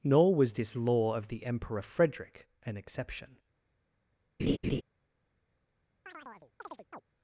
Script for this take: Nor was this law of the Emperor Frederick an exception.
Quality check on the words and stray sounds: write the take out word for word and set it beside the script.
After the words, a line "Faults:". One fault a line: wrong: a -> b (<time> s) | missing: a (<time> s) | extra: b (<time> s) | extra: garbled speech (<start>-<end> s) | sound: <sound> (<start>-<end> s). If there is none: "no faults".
Nor was this law of the Emperor Frederick an exception.
Faults:
sound: laugh (4.4-4.8 s)
sound: chirp (6.1-7.0 s)